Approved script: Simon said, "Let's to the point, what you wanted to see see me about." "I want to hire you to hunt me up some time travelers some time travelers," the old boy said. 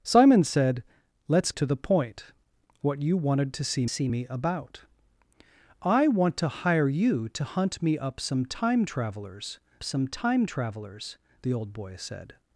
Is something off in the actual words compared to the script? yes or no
no